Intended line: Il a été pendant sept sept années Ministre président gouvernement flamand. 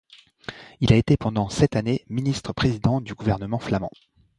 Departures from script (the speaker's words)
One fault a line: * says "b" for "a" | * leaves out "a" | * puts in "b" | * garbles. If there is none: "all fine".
* leaves out "sept"
* puts in "du"